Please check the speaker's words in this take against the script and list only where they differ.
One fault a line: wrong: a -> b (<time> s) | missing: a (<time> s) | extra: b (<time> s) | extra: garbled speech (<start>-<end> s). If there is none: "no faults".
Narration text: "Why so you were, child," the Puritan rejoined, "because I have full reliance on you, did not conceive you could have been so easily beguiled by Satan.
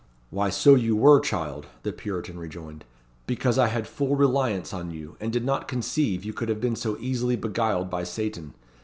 wrong: have -> had (3.7 s)
extra: and (5.2 s)